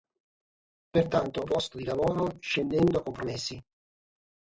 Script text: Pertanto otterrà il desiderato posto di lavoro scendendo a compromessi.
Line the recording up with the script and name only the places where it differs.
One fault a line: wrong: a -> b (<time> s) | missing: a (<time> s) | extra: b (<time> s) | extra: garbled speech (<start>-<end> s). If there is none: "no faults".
missing: otterrà il desiderato (1.5 s)